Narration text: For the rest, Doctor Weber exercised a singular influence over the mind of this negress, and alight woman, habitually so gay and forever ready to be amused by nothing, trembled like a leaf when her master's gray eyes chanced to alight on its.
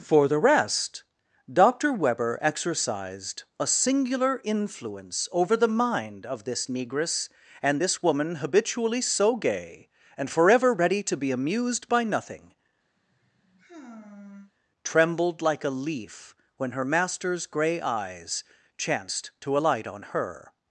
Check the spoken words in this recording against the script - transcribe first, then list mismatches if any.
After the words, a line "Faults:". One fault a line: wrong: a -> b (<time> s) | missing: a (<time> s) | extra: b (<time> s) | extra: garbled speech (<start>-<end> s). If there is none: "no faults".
For the rest, Doctor Weber exercised a singular influence over the mind of this negress, and this woman, habitually so gay and forever ready to be amused by nothing, trembled like a leaf when her master's gray eyes chanced to alight on her.
Faults:
wrong: alight -> this (7.8 s)
wrong: its -> her (20.0 s)